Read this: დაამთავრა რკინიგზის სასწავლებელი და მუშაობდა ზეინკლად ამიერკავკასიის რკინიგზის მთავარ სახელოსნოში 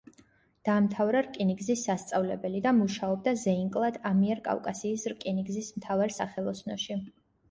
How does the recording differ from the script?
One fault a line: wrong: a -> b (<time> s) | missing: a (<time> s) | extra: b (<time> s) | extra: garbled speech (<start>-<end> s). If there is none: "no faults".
no faults